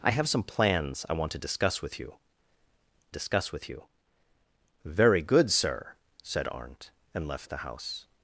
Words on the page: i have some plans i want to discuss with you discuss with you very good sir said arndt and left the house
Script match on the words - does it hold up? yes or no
yes